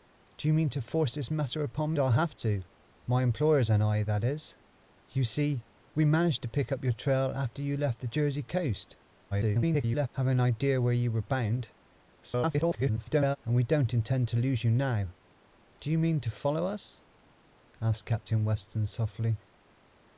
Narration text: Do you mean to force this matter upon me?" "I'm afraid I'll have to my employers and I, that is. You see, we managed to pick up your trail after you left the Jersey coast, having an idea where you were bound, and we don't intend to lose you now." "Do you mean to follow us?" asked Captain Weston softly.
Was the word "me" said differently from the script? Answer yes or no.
yes